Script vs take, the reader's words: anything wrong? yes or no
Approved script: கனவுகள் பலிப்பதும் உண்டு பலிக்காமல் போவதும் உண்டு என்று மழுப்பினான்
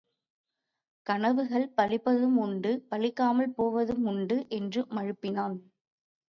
no